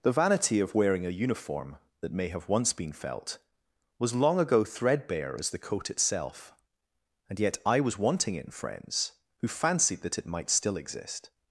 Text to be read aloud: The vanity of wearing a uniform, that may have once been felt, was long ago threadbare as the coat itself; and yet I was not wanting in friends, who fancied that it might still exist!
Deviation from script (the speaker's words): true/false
true